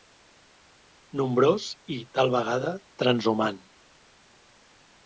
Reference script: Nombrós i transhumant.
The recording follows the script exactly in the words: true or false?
false